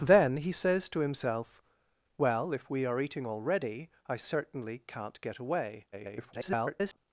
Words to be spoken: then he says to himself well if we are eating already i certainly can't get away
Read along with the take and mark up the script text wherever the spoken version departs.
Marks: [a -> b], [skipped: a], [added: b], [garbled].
then he says to himself well if we are eating already i certainly can't get away [garbled]